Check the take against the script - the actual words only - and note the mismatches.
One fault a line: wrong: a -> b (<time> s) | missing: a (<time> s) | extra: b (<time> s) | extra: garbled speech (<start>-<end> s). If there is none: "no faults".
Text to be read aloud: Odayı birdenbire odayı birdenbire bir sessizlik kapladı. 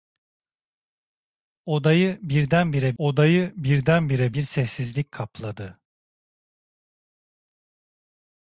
no faults